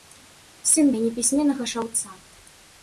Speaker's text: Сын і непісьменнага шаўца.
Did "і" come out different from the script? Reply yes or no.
no